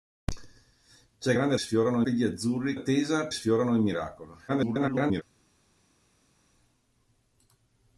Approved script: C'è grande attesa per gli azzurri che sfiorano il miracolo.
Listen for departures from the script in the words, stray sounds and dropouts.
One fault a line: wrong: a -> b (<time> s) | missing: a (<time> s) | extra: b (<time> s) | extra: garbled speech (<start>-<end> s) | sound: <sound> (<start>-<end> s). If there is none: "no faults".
wrong: attesa -> sfiorano (1.6 s)
wrong: che -> attesa (2.7 s)
extra: garbled speech (4.5-5.2 s)